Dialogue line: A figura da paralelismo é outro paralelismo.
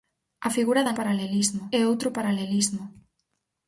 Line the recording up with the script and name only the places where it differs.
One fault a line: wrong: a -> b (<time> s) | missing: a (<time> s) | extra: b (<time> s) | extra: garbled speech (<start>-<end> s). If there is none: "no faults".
no faults